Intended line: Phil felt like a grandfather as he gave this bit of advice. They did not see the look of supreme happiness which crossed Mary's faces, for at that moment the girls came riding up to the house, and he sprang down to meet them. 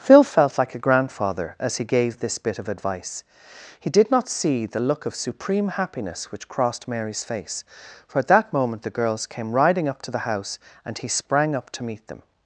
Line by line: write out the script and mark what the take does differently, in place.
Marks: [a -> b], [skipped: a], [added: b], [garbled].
Phil felt like a grandfather as he gave this bit of advice. [They -> He] did not see the look of supreme happiness which crossed Mary's [faces, -> face] for at that moment the girls came riding up to the house, and he sprang [down -> up] to meet them.